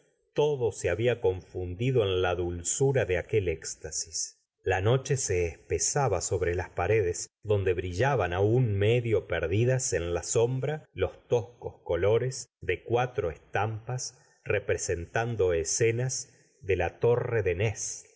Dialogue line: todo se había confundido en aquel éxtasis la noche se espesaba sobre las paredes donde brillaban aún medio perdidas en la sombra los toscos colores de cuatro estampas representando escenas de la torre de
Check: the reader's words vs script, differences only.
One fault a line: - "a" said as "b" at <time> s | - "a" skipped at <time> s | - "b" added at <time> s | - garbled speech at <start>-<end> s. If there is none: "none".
- "la dulzura de" added at 2.2 s